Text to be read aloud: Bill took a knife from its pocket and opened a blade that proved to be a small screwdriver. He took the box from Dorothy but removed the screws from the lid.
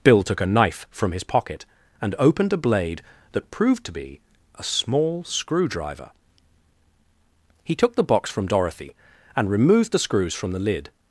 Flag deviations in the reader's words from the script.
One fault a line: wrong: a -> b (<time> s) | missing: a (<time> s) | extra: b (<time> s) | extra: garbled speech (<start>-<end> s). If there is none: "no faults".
wrong: its -> his (1.1 s)
wrong: but -> and (9.3 s)